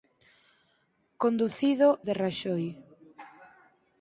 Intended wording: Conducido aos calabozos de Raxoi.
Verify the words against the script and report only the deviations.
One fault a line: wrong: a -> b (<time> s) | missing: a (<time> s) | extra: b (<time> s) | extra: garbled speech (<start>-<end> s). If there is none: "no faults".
missing: aos calabozos (1.9 s)